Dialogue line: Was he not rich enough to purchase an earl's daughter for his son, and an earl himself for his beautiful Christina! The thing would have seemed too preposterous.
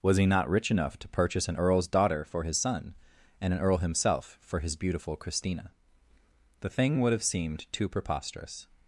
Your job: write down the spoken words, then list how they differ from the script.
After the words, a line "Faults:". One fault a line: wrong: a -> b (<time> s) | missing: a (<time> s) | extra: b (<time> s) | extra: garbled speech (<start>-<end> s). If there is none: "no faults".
Was he not rich enough to purchase an earl's daughter for his son, and an earl himself for his beautiful Christina! The thing would have seemed too preposterous.
Faults:
no faults